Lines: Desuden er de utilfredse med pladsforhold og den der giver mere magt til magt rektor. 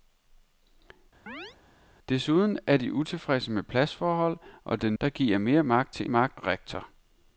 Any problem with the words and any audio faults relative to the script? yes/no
yes